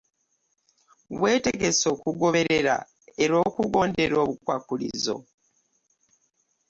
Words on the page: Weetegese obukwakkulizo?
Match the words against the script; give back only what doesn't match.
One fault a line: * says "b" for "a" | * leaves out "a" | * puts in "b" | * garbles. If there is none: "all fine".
* puts in "okugoberera era okugondera"